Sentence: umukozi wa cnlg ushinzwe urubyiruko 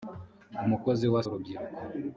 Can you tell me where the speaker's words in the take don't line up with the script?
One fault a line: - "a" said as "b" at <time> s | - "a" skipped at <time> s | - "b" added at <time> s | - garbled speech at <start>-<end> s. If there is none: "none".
- "cnlg ushinzwe" skipped at 1.2 s